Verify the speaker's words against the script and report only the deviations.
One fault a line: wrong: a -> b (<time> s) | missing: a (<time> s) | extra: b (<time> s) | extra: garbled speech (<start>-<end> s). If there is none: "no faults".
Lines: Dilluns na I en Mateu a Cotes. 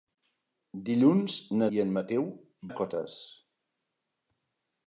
no faults